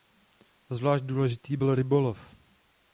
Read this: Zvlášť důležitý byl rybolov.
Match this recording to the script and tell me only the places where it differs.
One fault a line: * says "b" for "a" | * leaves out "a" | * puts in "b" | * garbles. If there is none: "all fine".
all fine